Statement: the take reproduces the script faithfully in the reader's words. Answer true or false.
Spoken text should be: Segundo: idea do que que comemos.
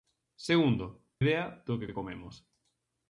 true